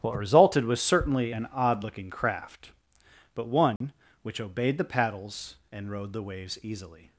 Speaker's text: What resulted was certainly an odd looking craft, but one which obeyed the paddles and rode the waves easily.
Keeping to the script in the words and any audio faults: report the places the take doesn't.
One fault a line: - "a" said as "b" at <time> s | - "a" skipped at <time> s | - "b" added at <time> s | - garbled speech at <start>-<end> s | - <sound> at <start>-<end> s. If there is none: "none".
- dropout at 3.8-3.8 s